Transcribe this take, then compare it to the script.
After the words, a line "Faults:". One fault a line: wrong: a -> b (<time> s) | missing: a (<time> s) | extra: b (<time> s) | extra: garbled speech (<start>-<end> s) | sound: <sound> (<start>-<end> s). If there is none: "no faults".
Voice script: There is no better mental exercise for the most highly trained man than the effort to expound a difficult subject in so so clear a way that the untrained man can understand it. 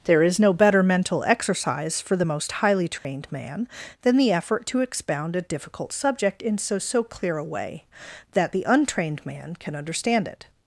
There is no better mental exercise for the most highly trained man than the effort to expound a difficult subject in so so clear a way that the untrained man can understand it.
Faults:
sound: dropout (3.0-3.0 s)